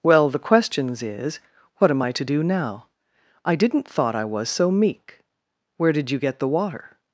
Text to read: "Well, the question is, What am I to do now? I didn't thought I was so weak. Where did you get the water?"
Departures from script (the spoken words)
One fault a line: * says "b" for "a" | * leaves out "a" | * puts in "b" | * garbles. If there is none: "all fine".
* says "questions" for "question"
* says "meek" for "weak"